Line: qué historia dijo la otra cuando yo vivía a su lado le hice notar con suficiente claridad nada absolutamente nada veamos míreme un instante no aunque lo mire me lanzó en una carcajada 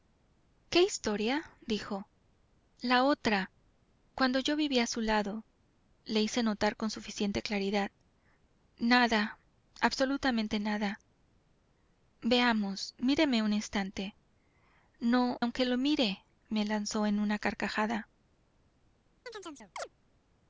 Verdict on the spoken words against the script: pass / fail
pass